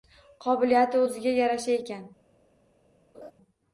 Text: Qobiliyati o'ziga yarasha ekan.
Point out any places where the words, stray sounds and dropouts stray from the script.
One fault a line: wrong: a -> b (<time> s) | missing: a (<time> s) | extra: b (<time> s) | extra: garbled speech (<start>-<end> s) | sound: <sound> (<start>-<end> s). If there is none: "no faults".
sound: laugh (3.1-3.3 s)